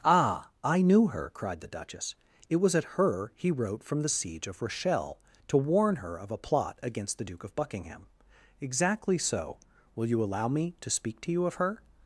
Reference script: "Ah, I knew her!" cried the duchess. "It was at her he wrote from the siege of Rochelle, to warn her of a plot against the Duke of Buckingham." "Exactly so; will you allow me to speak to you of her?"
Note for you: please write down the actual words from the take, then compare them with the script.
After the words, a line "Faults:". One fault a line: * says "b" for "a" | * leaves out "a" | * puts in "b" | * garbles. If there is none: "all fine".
"Ah, I knew her!" cried the duchess. "It was at her he wrote from the siege of Rochelle, to warn her of a plot against the Duke of Buckingham." "Exactly so; will you allow me to speak to you of her?"
Faults:
all fine